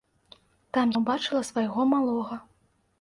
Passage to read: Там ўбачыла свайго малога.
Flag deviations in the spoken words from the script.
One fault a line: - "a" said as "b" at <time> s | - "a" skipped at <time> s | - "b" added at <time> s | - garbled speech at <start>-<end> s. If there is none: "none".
none